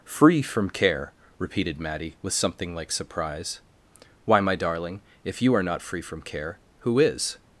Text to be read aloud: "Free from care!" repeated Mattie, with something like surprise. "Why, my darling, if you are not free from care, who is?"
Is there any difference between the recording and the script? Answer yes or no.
no